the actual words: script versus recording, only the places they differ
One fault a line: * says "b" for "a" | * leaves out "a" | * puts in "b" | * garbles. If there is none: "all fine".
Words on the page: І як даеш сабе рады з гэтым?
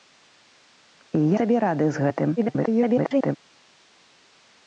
* leaves out "як даеш"
* garbles